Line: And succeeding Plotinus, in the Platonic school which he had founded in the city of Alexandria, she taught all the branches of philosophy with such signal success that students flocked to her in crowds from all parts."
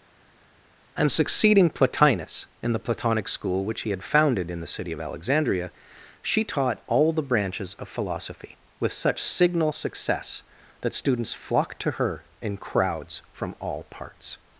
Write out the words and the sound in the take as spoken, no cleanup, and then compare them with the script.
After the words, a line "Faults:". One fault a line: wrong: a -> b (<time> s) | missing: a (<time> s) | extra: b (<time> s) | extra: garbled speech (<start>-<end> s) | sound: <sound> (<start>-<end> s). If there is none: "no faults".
And succeeding Plotinus, in the Platonic school which he had founded in the city of Alexandria, she taught all the branches of philosophy with such signal success that students flocked to her in crowds from all parts."
Faults:
no faults